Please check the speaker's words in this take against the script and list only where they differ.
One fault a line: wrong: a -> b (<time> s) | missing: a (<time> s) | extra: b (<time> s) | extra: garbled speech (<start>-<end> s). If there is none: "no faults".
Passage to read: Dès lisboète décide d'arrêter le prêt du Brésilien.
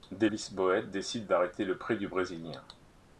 no faults